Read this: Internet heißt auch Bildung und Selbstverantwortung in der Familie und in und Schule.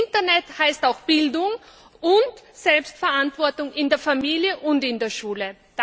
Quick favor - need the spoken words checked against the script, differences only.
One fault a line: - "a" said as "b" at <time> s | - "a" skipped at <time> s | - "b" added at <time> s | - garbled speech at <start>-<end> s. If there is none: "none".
- "und" said as "der" at 5.0 s